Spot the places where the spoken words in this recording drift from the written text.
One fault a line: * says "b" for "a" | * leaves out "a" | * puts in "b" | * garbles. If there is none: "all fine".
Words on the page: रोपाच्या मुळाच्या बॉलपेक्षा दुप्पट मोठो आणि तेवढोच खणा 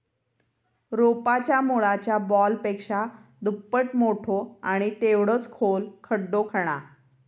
* puts in "खोल खड्डो"